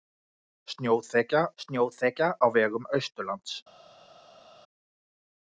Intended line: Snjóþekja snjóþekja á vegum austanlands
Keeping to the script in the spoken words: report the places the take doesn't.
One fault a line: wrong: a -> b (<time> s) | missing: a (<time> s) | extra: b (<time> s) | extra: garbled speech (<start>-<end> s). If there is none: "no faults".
no faults